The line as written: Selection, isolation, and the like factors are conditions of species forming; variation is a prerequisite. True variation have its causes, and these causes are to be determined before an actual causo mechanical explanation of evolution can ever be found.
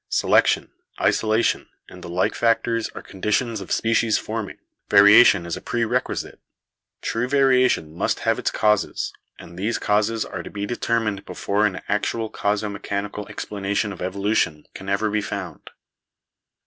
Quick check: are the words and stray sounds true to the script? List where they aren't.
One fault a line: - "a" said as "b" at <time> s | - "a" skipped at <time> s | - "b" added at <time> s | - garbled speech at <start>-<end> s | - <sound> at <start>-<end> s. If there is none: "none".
- "must" added at 7.9 s